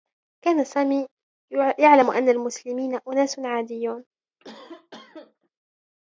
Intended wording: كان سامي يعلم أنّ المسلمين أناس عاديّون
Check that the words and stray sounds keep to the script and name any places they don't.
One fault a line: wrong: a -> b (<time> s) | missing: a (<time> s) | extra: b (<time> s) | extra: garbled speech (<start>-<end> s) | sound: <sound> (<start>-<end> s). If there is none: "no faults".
sound: cough (4.4-5.5 s)